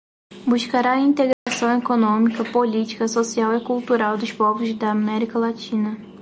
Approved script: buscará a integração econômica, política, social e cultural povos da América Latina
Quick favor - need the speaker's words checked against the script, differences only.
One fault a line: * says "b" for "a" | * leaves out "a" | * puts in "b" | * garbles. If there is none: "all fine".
* puts in "dos"